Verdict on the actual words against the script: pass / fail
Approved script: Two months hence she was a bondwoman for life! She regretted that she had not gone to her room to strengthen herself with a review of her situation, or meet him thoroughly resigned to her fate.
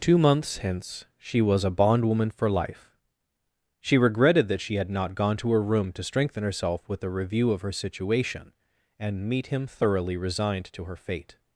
fail